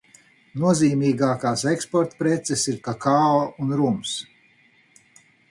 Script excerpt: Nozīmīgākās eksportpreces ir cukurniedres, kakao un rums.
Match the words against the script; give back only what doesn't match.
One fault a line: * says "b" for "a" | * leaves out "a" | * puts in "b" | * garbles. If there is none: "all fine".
* leaves out "cukurniedres"